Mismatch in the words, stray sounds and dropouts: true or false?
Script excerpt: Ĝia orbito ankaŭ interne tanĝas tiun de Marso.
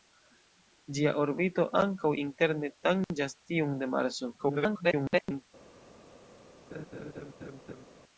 true